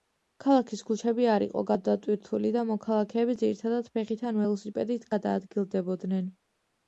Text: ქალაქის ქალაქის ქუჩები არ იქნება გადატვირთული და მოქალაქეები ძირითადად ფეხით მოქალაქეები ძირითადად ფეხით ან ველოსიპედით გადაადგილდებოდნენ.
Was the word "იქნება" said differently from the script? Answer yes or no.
yes